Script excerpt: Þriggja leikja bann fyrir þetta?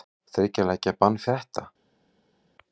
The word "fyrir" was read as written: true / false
false